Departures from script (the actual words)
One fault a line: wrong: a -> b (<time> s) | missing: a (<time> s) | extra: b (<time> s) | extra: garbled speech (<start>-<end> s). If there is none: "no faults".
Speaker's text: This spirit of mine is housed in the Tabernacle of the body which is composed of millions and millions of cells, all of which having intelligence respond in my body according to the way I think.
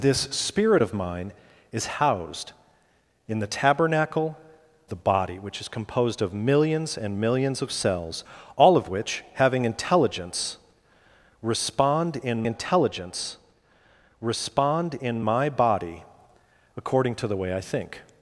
missing: of (4.4 s)
extra: intelligence respond in (12.5 s)